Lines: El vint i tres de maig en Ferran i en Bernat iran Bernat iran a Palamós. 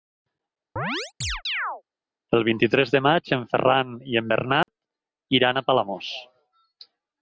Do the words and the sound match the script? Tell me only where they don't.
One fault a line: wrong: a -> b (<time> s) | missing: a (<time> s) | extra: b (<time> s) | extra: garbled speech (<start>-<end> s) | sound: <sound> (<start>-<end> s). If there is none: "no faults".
sound: chirp (0.8-1.8 s)
sound: dropout (4.6-4.7 s)
missing: Bernat iran (5.6 s)